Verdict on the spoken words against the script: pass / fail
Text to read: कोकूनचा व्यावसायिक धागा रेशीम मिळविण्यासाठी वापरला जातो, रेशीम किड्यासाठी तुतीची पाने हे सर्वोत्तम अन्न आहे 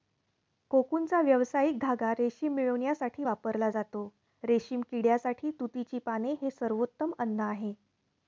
pass